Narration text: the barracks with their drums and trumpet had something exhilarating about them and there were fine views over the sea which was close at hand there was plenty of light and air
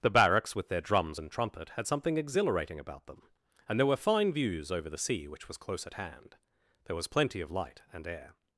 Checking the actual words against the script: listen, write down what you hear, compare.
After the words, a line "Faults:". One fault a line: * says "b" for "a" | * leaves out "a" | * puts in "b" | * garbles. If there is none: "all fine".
the barracks with their drums and trumpet had something exhilarating about them and there were fine views over the sea which was close at hand there was plenty of light and air
Faults:
all fine